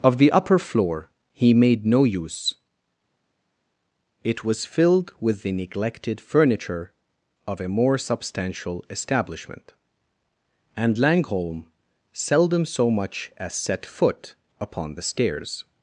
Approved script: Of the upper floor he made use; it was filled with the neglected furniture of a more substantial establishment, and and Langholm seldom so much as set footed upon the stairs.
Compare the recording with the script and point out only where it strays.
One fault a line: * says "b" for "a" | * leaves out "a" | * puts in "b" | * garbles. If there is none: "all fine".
* puts in "no"
* leaves out "and"
* says "foot" for "footed"